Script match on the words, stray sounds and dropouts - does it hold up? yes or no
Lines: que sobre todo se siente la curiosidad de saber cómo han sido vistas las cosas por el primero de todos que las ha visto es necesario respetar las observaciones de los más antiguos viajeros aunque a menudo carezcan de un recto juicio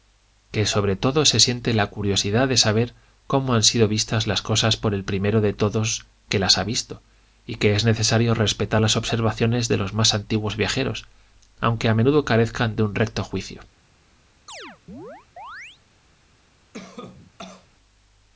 no